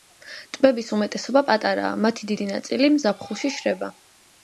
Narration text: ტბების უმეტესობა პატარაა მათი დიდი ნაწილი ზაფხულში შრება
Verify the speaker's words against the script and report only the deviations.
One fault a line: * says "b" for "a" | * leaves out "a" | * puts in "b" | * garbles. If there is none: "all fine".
all fine